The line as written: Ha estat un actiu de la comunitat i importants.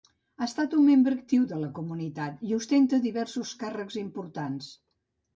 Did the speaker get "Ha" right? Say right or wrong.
right